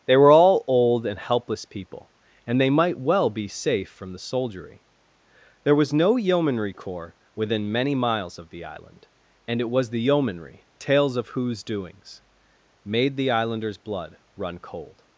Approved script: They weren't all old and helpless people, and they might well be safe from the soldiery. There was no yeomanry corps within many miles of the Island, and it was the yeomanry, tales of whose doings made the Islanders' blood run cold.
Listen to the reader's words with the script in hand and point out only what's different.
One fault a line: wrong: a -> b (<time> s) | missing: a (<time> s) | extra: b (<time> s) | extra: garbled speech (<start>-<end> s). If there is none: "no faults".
wrong: weren't -> were (0.2 s)